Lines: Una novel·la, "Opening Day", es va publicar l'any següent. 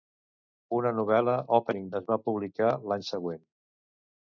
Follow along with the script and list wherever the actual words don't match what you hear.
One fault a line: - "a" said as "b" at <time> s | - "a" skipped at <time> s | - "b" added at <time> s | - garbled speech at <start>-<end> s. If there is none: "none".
- "Day" skipped at 1.9 s